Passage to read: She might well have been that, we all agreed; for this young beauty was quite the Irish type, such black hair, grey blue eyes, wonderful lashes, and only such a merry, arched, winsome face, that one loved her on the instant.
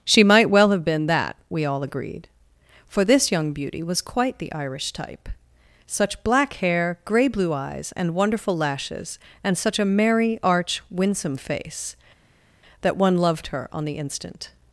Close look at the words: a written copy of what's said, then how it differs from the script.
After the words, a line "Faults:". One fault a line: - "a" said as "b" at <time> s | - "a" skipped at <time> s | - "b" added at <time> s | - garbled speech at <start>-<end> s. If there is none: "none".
She might well have been that, we all agreed; for this young beauty was quite the Irish type, such black hair, grey blue eyes, and wonderful lashes, and such a merry, arch, winsome face, that one loved her on the instant.
Faults:
- "and" added at 8.0 s
- "only" skipped at 9.6 s
- "arched" said as "arch" at 10.4 s